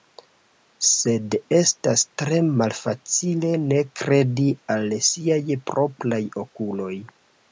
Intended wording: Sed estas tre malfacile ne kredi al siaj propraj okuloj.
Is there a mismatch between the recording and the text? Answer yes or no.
no